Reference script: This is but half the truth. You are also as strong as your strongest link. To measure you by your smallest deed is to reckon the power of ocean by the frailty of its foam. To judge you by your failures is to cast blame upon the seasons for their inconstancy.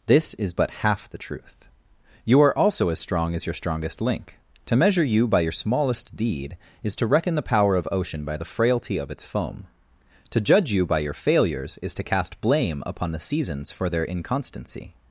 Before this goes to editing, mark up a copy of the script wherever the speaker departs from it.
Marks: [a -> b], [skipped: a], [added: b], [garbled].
This is but half the truth. You are also as strong as your strongest link. To measure you by your smallest deed is to reckon the power of ocean by the frailty of its foam. To judge you by your failures is to cast blame upon the seasons for their inconstancy.